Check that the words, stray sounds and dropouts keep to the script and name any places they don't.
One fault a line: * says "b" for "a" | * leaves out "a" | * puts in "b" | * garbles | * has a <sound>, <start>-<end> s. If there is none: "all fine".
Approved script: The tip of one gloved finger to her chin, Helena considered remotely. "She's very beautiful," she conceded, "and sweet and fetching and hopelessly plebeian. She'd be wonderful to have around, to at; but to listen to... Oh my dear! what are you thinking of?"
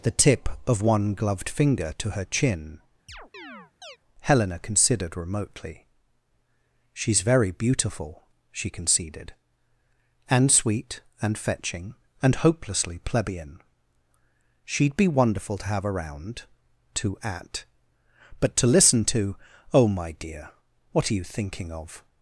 * has a chirp, 3.1-4.0 s